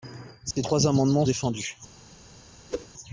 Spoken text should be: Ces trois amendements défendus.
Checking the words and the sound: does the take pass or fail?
fail